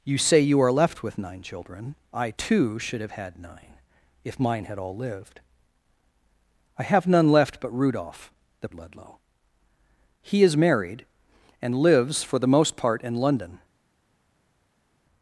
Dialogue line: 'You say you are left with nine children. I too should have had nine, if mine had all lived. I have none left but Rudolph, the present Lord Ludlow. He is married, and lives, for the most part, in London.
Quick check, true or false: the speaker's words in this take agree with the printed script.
false